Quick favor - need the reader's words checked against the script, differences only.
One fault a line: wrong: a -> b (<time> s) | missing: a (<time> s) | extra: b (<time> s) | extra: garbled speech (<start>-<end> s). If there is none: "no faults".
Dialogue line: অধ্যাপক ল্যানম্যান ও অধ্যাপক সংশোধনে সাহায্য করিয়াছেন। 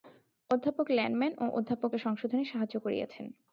no faults